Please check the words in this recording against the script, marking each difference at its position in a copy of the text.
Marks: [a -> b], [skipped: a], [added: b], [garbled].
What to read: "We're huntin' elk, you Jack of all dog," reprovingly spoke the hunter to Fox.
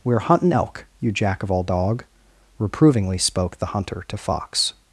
"We're huntin' elk, you Jack of all dog," reprovingly spoke the hunter to Fox.